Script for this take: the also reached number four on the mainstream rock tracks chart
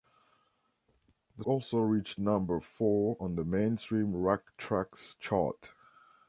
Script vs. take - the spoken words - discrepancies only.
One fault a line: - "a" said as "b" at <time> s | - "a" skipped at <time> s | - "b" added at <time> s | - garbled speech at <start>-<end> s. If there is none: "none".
none